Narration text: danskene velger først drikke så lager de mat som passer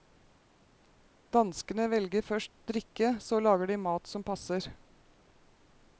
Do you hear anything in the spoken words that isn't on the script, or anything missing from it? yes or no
no